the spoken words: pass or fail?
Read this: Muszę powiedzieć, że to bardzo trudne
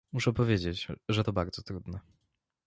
pass